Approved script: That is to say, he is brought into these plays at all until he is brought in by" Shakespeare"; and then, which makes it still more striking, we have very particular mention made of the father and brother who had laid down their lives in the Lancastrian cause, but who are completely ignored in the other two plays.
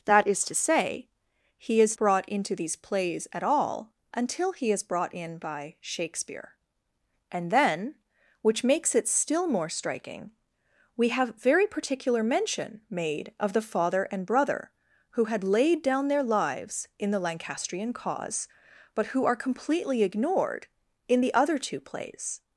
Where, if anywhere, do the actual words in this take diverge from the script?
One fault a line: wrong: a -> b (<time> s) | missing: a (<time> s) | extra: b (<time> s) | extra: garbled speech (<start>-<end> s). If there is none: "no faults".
no faults